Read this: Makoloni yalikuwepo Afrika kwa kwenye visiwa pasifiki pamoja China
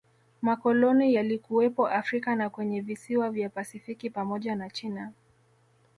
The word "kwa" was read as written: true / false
false